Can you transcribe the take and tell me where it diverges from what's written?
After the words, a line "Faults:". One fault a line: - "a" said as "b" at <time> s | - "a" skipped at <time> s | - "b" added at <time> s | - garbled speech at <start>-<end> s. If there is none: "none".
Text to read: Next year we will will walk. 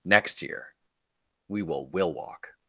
Next year we will will walk.
Faults:
none